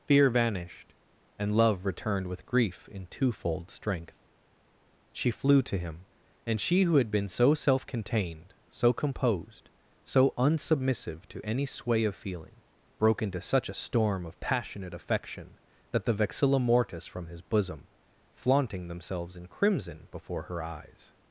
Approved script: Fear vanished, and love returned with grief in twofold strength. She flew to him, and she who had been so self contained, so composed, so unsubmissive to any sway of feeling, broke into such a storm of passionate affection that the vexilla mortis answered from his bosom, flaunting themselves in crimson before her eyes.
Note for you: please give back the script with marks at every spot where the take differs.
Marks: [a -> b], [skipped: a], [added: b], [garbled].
Fear vanished, and love returned with grief in twofold strength. She flew to him, and she who had been so self contained, so composed, so unsubmissive to any sway of feeling, broke into such a storm of passionate affection that the vexilla mortis [skipped: answered] from his bosom, flaunting themselves in crimson before her eyes.